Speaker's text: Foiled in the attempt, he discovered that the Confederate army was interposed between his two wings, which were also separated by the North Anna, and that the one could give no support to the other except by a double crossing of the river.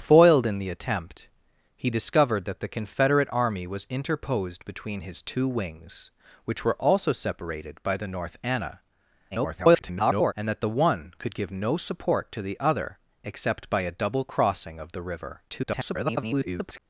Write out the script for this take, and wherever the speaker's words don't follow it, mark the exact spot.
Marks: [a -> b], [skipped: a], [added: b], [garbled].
Foiled in the attempt, he discovered that the Confederate army was interposed between his two wings, which were also separated by the North Anna, [garbled] and that the one could give no support to the other except by a double crossing of the river. [garbled]